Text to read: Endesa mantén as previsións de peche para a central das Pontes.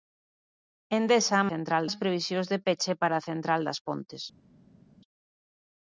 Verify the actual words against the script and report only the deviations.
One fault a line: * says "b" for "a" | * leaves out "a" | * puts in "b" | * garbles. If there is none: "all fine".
* says "central" for "mantén"